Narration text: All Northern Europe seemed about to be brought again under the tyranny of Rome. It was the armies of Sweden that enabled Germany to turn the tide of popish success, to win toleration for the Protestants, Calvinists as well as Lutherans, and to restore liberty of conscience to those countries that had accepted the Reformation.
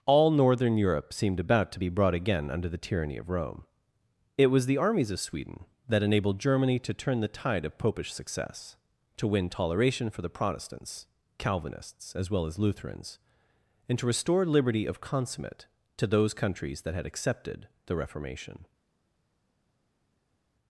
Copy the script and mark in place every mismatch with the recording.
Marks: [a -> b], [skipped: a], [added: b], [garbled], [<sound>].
All Northern Europe seemed about to be brought again under the tyranny of Rome. It was the armies of Sweden that enabled Germany to turn the tide of popish success, to win toleration for the Protestants, Calvinists as well as Lutherans, and to restore liberty of [conscience -> consummate] to those countries that had accepted the Reformation.